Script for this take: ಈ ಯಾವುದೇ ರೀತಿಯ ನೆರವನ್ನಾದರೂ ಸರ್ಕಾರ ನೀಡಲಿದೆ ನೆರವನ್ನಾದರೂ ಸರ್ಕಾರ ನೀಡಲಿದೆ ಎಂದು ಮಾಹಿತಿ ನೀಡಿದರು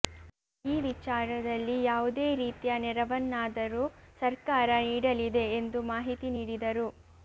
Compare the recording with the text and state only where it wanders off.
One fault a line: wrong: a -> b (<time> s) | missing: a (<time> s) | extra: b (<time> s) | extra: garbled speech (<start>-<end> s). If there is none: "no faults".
extra: ವಿಚಾರದಲ್ಲಿ (0.8 s)
missing: ನೆರವನ್ನಾದರೂ ಸರ್ಕಾರ ನೀಡಲಿದೆ (5.5 s)